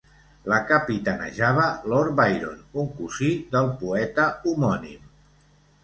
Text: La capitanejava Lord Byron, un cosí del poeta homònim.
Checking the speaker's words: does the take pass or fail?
pass